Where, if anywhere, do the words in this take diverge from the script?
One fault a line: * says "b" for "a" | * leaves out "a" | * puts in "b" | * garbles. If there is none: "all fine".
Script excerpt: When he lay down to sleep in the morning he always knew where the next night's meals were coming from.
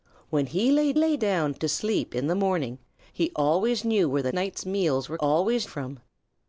* puts in "lay"
* leaves out "next"
* says "always" for "coming"